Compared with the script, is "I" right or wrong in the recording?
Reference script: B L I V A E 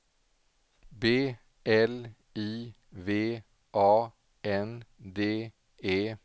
right